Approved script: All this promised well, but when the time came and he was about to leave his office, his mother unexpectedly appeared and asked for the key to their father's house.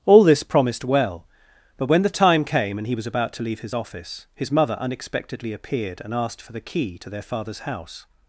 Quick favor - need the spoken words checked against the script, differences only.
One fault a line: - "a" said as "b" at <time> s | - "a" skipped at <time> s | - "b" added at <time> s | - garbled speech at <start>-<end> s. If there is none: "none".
none